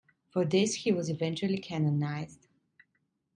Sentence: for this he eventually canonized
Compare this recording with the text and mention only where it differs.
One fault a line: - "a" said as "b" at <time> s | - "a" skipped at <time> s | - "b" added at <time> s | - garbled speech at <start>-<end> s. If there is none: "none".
- "was" added at 0.9 s